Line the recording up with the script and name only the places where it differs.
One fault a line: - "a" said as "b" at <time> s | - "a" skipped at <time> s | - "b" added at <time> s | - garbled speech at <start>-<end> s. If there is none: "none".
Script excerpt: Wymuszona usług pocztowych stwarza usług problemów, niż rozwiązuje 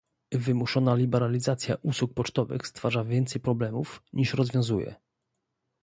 - "liberalizacja" added at 0.9 s
- "usług" said as "więcej" at 3.0 s